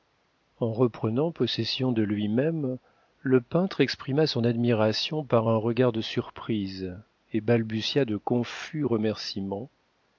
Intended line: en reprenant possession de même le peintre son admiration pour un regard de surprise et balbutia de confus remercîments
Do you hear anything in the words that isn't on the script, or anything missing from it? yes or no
yes